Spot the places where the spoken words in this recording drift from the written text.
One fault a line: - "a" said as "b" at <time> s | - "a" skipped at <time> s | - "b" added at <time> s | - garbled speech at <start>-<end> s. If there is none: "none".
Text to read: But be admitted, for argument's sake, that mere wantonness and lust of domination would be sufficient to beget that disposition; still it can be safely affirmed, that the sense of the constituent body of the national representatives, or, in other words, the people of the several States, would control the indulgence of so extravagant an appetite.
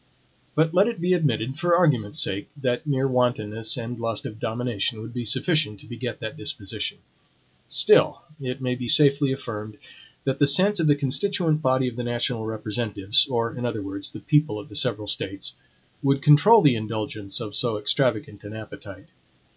- "let it" added at 0.7 s
- "can" said as "may" at 8.6 s